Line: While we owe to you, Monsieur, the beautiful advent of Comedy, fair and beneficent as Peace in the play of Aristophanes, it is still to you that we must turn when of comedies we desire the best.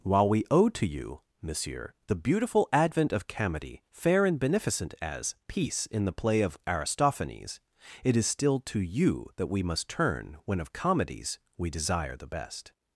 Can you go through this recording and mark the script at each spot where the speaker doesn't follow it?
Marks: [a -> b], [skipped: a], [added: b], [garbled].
While we owe to you, Monsieur, the beautiful advent of Comedy, fair and beneficent as Peace in the play of Aristophanes, it is still to you that we must turn when of comedies we desire the best.